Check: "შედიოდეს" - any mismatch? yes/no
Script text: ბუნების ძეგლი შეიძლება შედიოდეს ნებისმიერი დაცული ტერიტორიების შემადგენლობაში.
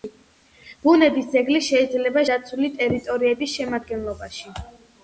yes